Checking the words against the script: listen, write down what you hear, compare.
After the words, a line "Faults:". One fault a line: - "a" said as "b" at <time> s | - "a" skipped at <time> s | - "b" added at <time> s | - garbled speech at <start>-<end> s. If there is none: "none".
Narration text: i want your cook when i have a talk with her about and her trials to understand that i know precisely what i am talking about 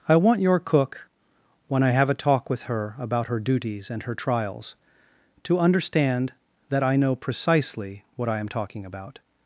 i want your cook when i have a talk with her about her duties and her trials to understand that i know precisely what i am talking about
Faults:
- "her duties" added at 3.3 s